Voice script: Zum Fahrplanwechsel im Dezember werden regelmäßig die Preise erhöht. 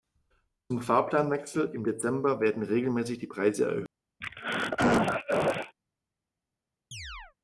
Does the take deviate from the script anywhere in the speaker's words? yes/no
no